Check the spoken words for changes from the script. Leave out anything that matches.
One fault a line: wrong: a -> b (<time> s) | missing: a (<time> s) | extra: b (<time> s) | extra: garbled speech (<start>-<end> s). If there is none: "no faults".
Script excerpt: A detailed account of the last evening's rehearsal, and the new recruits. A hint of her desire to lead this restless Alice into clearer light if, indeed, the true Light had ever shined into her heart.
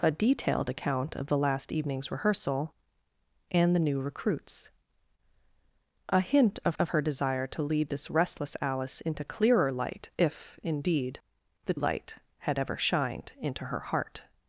extra: of (6.8 s)
missing: true (11.7 s)